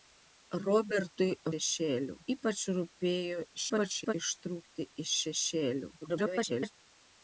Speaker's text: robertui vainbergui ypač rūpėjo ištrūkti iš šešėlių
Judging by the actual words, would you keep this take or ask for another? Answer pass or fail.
fail